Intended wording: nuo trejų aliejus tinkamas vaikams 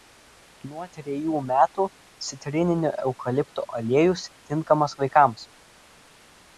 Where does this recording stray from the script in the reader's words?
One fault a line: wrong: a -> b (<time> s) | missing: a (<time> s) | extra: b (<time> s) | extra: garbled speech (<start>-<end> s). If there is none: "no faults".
extra: metų citrininio eukalipto (1.5 s)